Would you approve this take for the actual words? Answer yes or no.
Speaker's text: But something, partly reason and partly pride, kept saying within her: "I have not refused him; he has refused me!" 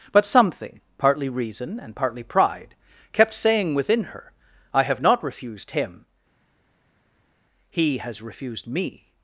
yes